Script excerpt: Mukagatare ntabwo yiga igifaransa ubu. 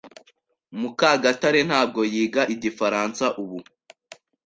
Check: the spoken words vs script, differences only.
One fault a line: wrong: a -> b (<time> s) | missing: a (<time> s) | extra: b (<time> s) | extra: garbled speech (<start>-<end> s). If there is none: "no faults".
no faults